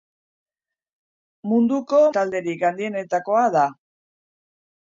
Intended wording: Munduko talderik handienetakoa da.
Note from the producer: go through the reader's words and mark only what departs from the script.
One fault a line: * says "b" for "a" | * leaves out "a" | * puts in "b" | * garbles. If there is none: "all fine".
all fine